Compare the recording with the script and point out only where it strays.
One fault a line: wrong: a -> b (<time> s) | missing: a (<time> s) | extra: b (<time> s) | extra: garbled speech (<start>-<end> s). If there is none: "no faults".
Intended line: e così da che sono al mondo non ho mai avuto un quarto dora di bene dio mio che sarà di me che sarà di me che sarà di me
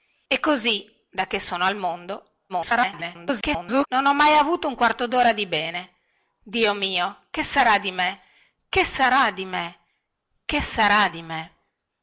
extra: garbled speech (2.5-3.9 s)